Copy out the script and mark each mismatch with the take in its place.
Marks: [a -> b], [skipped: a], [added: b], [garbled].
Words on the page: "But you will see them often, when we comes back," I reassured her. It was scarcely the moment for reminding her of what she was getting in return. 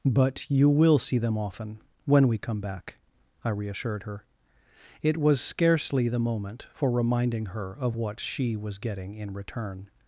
"But you will see them often, when we [comes -> come] back," I reassured her. It was scarcely the moment for reminding her of what she was getting in return.